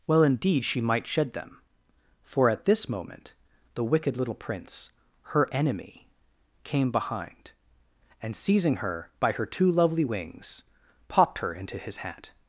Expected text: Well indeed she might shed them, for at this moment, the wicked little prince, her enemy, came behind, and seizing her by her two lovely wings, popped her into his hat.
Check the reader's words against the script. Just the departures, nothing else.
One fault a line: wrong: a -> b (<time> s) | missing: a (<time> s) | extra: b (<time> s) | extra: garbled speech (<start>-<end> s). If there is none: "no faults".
no faults